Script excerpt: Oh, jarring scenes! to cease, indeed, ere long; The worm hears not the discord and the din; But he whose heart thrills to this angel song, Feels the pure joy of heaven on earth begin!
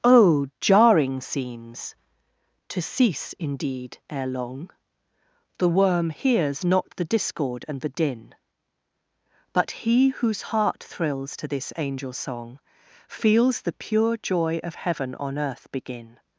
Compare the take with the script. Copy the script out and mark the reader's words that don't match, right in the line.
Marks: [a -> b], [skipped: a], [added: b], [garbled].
Oh, jarring scenes! to cease, indeed, ere long; The worm hears not the discord and the din; But he whose heart thrills to this angel song, Feels the pure joy of heaven on earth begin!